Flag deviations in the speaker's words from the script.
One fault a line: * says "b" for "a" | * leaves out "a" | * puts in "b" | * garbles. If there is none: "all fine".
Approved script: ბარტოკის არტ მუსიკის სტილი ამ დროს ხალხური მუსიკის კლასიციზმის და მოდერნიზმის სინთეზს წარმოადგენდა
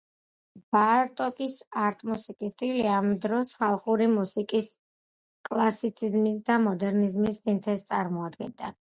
all fine